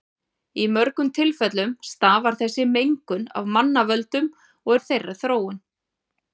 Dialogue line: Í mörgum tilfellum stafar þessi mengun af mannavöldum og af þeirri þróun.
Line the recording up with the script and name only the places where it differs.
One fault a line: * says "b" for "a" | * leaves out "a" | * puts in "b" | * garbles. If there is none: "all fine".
all fine